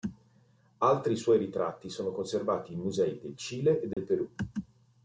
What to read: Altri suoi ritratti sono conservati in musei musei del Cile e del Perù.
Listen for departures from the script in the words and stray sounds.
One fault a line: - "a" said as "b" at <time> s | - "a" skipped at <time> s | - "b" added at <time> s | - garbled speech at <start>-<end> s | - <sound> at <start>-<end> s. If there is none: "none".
- "musei" skipped at 3.2 s
- dropout at 3.9-4.0 s